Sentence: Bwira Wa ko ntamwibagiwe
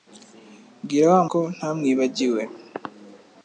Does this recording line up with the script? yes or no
yes